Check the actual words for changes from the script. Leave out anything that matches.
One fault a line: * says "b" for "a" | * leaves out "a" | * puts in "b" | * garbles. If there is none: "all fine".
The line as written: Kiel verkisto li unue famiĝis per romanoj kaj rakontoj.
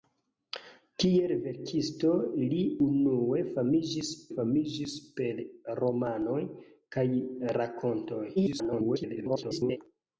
* puts in "famiĝis"
* garbles